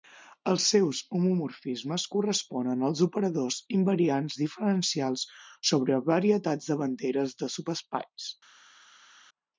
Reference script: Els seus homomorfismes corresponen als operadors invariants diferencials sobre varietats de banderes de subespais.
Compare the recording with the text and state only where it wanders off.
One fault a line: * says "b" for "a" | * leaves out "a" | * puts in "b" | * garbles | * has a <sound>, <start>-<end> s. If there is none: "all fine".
all fine